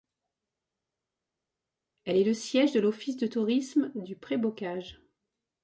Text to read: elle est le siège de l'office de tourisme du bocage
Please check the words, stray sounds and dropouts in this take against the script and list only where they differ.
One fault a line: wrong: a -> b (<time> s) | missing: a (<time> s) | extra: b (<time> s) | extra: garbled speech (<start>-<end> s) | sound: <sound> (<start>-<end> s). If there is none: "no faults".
extra: pré (4.1 s)